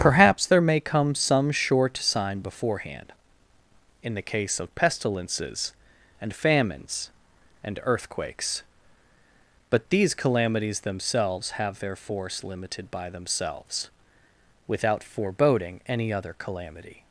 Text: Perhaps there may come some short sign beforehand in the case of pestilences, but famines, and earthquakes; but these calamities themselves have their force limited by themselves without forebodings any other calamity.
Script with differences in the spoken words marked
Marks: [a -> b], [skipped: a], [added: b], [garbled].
Perhaps there may come some short sign beforehand in the case of pestilences, [but -> and] famines, and earthquakes; but these calamities themselves have their force limited by themselves without [forebodings -> foreboding] any other calamity.